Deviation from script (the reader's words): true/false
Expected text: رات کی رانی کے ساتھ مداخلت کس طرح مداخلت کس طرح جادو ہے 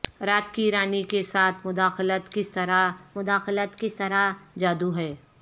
false